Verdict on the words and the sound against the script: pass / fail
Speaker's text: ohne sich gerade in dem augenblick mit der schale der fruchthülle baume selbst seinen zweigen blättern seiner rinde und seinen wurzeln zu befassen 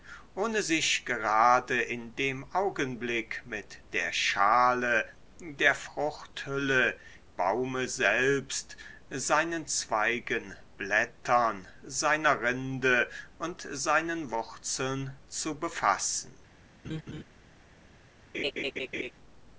fail